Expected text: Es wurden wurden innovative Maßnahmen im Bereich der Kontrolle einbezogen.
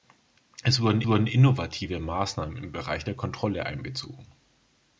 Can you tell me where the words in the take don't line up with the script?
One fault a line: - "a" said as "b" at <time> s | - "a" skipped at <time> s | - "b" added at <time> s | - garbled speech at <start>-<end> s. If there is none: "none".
none